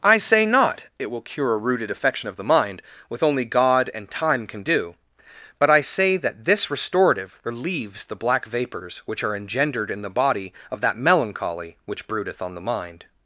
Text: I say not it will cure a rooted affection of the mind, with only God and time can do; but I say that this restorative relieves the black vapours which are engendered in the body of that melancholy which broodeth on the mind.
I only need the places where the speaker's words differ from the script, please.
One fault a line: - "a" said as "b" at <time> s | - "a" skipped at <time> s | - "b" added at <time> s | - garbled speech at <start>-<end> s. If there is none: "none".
none